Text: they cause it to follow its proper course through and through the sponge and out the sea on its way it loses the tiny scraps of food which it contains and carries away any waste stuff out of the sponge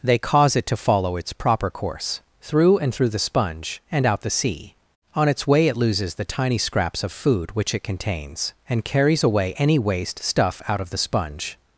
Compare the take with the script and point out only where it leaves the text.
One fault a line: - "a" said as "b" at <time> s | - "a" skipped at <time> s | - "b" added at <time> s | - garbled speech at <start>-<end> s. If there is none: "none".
none